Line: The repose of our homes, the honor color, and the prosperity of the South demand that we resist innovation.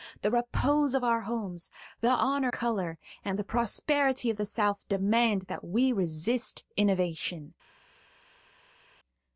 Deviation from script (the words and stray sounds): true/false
false